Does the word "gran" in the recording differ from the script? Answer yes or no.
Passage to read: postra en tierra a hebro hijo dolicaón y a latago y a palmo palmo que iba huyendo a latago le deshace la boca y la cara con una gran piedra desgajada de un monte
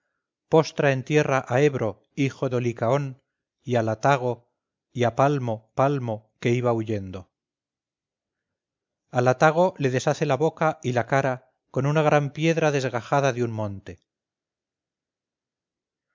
no